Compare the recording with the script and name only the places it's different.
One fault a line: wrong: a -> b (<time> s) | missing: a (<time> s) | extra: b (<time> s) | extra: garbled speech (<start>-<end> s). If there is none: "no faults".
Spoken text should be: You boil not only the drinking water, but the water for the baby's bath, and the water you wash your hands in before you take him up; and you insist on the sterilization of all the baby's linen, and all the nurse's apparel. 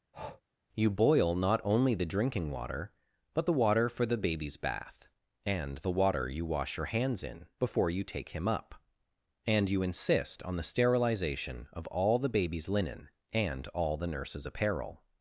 no faults